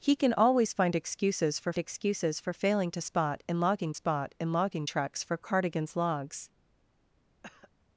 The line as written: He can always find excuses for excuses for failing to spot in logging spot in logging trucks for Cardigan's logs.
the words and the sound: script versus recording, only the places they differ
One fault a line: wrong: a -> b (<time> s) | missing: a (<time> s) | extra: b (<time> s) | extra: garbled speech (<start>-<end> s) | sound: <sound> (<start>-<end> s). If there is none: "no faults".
sound: cough (7.4-7.7 s)